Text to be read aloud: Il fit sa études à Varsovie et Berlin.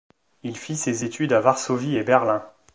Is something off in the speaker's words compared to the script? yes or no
yes